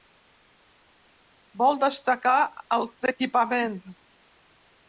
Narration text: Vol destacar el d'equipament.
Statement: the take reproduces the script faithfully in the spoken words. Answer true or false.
true